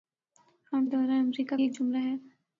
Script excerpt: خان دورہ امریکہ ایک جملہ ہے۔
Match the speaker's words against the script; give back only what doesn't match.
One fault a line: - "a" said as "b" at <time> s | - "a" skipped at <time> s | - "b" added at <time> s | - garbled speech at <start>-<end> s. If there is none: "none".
none